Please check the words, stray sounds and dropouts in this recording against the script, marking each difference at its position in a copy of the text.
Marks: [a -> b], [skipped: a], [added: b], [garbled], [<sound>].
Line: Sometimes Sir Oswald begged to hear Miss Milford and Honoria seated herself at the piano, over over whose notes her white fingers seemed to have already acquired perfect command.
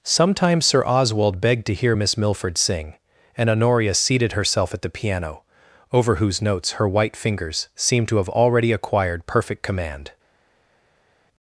Sometimes Sir Oswald begged to hear Miss Milford [added: sing] and Honoria seated herself at the piano, over [skipped: over] whose notes her white fingers seemed to have already acquired perfect command.